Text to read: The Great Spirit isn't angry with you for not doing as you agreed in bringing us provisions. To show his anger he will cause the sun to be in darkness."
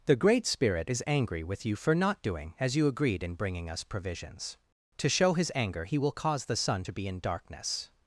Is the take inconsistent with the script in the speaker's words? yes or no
yes